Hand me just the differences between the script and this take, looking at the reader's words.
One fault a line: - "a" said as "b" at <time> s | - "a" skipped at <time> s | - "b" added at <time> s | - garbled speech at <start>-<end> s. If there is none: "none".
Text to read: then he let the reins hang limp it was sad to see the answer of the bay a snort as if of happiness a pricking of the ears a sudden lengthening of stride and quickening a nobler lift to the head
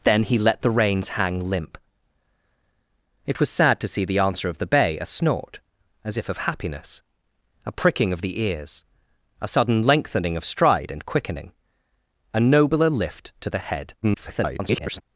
- garbled speech at 14.0-15.0 s